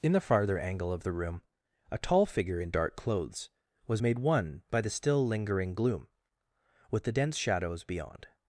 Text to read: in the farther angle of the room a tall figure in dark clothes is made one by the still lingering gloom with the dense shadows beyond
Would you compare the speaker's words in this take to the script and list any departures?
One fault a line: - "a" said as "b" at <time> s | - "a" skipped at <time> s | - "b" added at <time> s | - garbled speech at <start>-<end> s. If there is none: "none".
- "is" said as "was" at 3.9 s